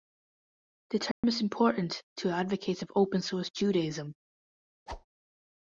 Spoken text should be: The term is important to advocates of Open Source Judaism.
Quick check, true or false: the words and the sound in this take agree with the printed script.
false